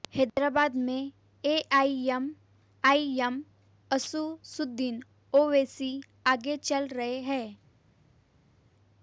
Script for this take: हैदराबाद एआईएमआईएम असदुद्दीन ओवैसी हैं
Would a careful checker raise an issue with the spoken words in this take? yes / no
yes